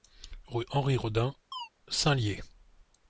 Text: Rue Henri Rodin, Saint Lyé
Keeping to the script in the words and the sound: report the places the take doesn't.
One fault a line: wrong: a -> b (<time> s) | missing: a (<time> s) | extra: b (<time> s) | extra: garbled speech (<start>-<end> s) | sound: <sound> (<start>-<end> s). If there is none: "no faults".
sound: chirp (1.5-1.7 s)